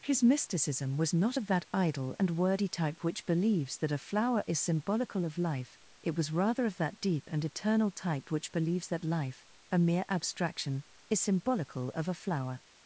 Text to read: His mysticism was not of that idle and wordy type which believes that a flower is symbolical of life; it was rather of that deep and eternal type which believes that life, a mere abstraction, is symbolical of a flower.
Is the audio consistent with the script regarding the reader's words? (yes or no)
yes